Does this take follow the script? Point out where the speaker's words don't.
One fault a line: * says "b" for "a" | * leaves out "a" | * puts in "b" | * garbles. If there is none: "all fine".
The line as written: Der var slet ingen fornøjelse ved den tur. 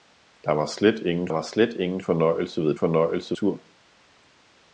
* puts in "var slet ingen"
* says "fornøjelse" for "den"